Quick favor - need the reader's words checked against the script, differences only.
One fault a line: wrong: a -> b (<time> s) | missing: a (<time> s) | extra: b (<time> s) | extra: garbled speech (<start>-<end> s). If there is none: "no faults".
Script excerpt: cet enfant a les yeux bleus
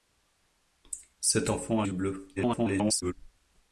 missing: les (1.9 s)
extra: garbled speech (2.4-3.1 s)